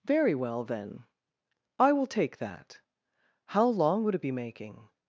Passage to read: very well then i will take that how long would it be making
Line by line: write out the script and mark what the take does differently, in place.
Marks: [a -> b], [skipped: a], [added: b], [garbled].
very well then i will take that how long would it be making